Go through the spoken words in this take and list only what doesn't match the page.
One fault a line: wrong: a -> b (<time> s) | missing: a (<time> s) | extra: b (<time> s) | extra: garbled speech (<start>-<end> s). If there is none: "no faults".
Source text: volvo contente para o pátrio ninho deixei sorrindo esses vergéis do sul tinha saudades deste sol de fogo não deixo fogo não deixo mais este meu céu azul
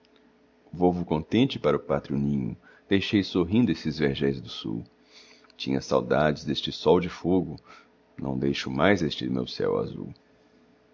missing: fogo não deixo (8.7 s)